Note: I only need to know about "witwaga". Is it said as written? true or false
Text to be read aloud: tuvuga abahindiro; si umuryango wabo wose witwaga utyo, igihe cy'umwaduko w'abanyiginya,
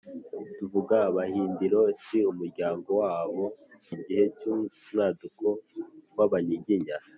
false